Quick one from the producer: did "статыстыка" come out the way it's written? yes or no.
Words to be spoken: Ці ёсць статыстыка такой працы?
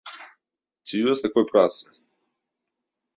no